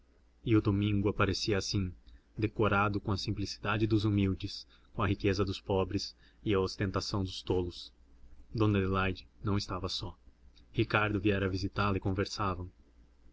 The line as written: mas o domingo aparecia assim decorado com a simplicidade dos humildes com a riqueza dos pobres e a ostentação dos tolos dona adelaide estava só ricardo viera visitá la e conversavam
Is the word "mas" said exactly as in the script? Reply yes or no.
no